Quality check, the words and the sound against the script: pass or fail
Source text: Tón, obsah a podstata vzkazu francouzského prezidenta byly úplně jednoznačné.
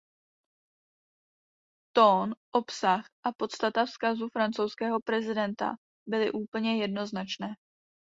pass